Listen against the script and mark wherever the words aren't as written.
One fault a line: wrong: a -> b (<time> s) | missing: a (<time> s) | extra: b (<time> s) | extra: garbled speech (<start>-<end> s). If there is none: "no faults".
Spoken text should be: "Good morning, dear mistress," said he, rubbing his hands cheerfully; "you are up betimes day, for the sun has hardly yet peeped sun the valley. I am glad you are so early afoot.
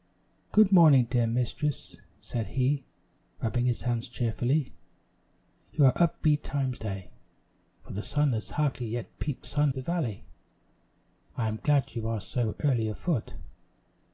no faults